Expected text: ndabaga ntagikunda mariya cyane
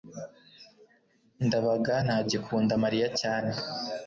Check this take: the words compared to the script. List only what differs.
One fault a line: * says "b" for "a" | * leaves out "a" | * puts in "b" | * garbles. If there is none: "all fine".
all fine